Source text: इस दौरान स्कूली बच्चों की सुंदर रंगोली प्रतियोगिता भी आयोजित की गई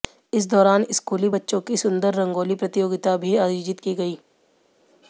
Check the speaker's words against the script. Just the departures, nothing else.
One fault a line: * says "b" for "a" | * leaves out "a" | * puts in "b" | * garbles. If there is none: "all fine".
all fine